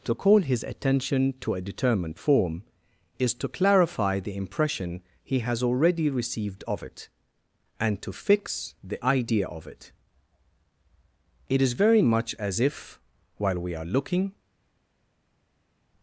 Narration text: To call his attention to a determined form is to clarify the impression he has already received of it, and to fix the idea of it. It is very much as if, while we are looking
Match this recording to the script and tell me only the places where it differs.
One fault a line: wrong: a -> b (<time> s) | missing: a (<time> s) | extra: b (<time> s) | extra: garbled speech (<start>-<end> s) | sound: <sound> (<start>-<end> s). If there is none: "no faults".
no faults